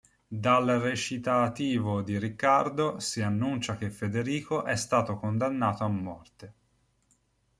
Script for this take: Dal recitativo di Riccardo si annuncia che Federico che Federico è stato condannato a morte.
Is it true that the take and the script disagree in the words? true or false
true